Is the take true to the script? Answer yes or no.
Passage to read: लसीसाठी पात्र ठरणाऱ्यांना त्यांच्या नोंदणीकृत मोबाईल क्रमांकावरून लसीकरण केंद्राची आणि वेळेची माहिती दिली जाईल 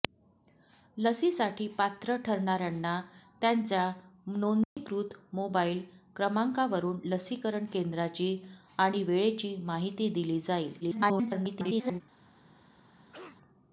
no